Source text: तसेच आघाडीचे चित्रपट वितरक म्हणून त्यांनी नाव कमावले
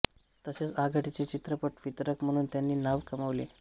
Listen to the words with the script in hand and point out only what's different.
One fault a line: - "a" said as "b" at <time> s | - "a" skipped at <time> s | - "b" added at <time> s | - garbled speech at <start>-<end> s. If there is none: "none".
none